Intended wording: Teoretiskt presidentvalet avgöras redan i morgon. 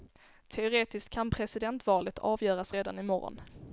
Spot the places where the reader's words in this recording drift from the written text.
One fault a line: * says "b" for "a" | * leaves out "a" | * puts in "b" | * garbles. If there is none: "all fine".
* puts in "kan"